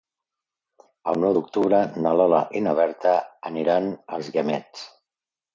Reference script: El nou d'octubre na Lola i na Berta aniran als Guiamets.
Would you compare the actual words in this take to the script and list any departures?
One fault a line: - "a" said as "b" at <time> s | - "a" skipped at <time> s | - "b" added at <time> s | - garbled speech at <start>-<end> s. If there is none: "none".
none